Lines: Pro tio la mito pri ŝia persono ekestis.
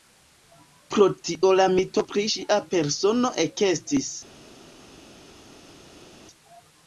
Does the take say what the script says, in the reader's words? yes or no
yes